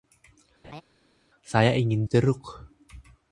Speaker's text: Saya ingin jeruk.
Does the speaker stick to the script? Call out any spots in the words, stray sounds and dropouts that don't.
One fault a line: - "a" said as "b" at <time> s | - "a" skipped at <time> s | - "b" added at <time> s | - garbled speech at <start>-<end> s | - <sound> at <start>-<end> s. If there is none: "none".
- laugh at 0.6-0.8 s